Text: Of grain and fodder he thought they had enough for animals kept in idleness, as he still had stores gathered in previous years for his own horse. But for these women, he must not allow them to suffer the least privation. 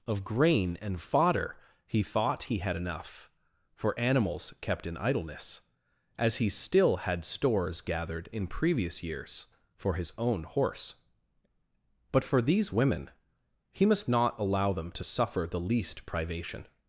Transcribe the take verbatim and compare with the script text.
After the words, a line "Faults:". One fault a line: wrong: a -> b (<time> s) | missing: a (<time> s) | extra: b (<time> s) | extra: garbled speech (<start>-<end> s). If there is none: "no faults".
Of grain and fodder he thought he had enough for animals kept in idleness, as he still had stores gathered in previous years for his own horse. But for these women, he must not allow them to suffer the least privation.
Faults:
wrong: they -> he (2.4 s)